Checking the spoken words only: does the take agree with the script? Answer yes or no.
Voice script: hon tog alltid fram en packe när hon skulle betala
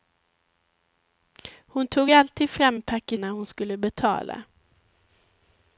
yes